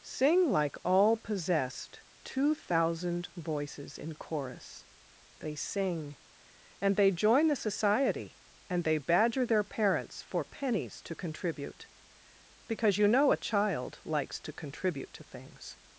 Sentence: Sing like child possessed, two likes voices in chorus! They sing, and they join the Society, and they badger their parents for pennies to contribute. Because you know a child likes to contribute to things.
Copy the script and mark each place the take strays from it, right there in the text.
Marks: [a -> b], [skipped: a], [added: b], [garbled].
Sing like [child -> all] possessed, two [likes -> thousand] voices in chorus! They sing, and they join the Society, and they badger their parents for pennies to contribute. Because you know a child likes to contribute to things.